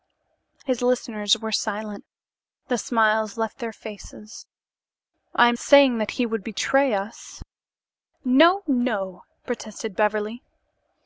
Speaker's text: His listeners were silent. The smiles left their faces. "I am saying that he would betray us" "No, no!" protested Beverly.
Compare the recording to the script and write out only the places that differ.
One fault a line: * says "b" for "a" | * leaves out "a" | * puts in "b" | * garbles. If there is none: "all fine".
all fine